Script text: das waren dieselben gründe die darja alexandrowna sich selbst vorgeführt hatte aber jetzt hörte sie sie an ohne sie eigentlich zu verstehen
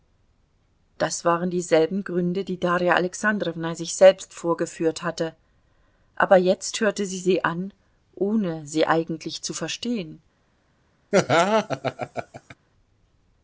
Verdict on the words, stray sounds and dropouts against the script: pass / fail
fail